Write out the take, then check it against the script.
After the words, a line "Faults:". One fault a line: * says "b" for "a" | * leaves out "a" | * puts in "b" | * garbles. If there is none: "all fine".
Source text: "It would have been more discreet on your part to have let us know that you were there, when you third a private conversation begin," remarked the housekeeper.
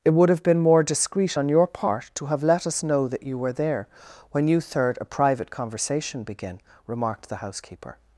"It would have been more discreet on your part to have let us know that you were there, when you third a private conversation begin," remarked the housekeeper.
Faults:
all fine